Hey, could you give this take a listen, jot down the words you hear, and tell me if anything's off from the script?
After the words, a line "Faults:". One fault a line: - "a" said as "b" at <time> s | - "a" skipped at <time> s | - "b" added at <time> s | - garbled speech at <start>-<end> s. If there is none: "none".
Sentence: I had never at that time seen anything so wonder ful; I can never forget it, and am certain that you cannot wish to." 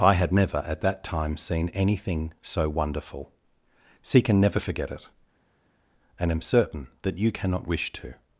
I had never at that time seen anything so wonderful see can never forget it, and am certain that you cannot wish to."
Faults:
- "wonder ful I" said as "wonderful see" at 2.7 s